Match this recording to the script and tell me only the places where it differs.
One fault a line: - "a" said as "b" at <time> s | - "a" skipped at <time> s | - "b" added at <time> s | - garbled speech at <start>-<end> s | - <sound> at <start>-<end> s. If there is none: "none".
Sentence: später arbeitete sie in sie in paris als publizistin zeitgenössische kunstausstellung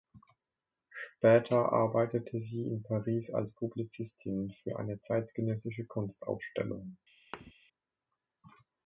- "sie in" skipped at 2.8 s
- "für eine" added at 4.6 s
- thud at 7.3-7.5 s